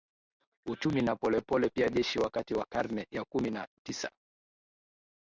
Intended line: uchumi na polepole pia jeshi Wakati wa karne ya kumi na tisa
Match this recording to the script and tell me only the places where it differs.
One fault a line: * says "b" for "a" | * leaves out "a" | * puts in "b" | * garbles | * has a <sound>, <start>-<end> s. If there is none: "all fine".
all fine